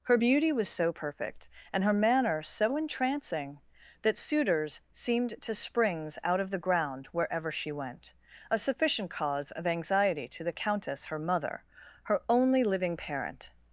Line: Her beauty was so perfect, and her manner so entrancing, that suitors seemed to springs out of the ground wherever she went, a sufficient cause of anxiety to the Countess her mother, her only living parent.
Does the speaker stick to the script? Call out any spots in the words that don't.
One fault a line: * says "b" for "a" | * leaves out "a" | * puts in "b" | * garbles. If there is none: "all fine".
all fine